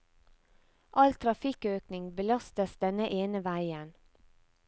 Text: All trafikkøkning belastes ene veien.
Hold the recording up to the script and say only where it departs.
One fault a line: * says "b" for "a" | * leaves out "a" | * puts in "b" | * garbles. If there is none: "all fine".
* puts in "denne"